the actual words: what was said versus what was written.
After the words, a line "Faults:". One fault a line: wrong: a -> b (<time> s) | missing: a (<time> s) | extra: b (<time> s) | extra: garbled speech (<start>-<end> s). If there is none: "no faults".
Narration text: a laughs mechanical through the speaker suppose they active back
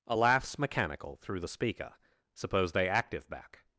a laughs mechanical through the speaker suppose they active back
Faults:
no faults